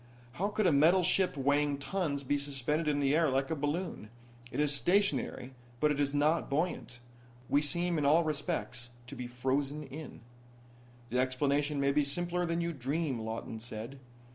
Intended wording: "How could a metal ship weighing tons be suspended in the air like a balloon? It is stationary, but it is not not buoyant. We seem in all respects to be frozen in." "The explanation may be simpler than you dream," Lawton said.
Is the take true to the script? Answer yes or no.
no